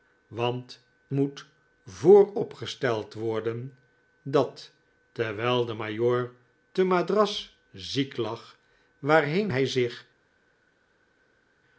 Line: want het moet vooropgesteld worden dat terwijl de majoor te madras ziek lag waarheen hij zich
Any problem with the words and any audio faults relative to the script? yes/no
yes